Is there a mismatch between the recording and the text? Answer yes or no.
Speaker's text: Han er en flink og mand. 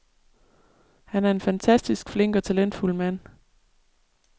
yes